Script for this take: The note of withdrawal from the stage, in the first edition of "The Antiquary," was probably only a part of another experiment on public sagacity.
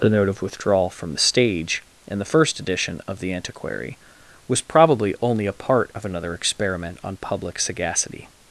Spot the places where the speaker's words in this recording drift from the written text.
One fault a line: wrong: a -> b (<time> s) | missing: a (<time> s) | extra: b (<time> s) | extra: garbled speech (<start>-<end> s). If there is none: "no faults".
no faults